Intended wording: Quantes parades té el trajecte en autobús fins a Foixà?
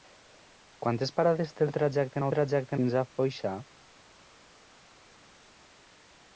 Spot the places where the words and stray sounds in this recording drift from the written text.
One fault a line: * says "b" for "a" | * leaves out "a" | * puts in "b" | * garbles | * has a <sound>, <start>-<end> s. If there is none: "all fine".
* says "trajecte" for "autobús"